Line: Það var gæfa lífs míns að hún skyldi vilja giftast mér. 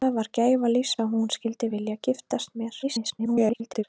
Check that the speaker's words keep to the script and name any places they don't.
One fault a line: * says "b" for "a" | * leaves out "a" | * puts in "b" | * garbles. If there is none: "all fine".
* leaves out "míns"
* garbles